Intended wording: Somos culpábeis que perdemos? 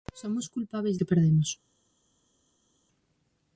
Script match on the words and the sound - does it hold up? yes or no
yes